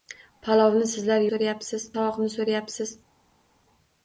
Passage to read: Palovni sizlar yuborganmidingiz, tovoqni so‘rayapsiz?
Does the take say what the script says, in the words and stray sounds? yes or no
no